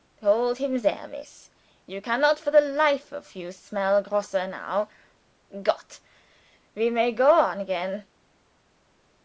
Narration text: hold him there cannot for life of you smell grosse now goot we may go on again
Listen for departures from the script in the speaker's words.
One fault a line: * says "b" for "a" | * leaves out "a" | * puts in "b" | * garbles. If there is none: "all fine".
* puts in "miss you"
* puts in "the"